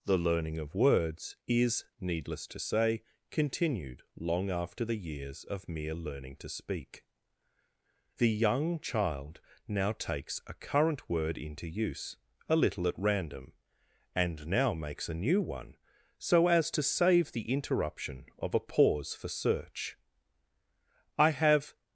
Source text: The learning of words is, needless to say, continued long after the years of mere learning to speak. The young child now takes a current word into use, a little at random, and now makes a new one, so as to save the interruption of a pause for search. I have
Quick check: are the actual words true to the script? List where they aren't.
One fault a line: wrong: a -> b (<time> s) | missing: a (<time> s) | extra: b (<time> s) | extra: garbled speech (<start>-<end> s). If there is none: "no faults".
no faults